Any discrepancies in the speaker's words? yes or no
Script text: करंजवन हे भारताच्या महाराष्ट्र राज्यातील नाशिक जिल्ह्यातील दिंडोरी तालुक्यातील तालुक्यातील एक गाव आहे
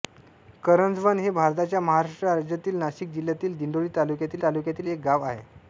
no